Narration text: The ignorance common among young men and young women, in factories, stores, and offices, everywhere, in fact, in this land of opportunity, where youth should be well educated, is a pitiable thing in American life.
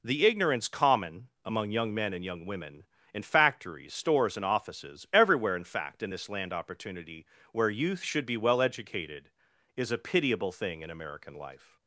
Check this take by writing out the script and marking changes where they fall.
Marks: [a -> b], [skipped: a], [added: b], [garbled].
The ignorance common among young men and young women, in factories, stores, and offices, everywhere, in fact, in this land [skipped: of] opportunity, where youth should be well educated, is a pitiable thing in American life.